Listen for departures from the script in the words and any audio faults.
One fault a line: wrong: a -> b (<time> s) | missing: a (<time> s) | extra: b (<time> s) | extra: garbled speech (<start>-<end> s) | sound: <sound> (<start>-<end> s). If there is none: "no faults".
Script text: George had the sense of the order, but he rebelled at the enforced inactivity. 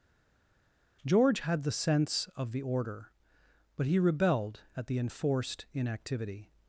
no faults